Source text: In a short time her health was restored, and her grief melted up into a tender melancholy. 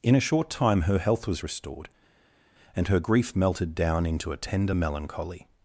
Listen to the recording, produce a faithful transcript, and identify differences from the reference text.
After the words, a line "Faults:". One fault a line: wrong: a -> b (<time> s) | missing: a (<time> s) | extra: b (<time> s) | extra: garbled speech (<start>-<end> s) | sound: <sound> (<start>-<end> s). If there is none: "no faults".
In a short time her health was restored, and her grief melted down into a tender melancholy.
Faults:
wrong: up -> down (3.8 s)